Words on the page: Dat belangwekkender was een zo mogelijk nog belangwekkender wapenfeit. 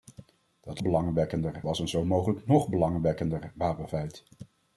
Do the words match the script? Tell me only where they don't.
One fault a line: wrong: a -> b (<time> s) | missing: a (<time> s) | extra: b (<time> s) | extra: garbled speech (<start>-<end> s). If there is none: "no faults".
no faults